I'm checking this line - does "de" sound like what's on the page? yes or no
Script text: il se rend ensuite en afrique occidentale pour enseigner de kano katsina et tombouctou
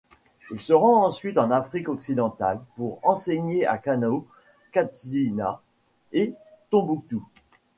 no